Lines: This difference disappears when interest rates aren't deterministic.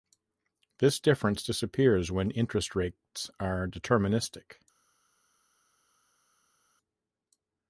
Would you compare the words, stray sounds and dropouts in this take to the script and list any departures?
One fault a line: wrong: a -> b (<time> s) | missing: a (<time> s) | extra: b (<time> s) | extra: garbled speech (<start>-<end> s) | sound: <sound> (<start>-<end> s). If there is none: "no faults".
wrong: aren't -> are (3.4 s)